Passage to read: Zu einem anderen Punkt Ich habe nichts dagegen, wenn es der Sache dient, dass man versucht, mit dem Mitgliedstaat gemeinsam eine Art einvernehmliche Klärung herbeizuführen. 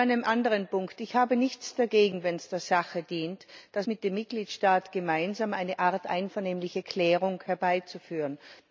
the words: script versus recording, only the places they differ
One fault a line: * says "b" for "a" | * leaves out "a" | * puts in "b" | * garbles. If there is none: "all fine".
* leaves out "man versucht"